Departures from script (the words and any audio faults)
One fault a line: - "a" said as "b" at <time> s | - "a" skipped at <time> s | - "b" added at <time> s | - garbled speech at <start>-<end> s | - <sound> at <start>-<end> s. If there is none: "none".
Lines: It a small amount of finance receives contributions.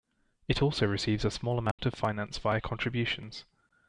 - "also receives" added at 0.6 s
- dropout at 1.7-1.8 s
- "receives" said as "via" at 2.4 s